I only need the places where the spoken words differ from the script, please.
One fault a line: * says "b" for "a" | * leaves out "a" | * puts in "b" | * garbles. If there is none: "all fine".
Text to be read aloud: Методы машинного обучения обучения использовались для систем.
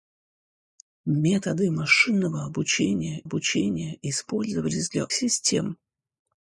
all fine